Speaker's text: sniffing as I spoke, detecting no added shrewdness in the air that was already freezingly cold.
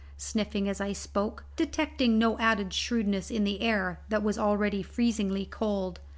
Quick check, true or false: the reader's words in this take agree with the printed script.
true